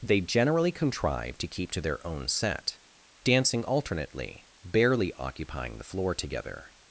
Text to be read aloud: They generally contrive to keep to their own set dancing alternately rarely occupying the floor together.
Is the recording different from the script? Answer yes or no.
yes